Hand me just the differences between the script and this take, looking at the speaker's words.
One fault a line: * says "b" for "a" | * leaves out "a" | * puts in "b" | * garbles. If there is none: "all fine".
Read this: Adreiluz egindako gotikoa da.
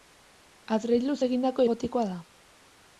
all fine